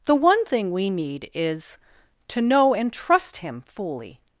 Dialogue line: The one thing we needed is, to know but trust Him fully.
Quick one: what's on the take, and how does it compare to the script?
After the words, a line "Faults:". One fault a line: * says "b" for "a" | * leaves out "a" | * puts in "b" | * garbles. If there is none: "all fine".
The one thing we need is, to know and trust Him fully.
Faults:
* says "need" for "needed"
* says "and" for "but"